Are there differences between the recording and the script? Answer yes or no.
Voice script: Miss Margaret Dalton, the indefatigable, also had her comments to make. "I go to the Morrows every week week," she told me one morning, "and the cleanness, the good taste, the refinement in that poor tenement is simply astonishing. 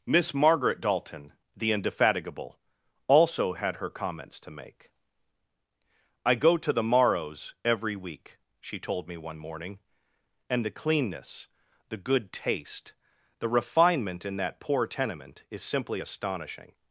yes